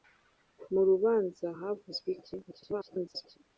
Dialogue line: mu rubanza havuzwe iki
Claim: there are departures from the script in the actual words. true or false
true